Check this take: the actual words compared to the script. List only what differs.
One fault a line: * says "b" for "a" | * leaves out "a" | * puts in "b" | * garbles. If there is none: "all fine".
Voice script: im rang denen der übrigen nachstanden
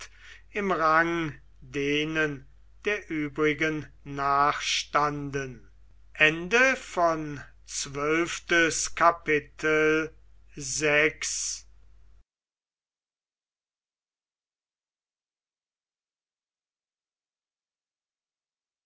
all fine